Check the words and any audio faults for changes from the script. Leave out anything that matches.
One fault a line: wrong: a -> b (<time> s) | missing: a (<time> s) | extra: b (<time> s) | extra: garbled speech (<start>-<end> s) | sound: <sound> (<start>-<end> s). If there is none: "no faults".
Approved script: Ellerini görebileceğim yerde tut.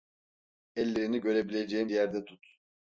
no faults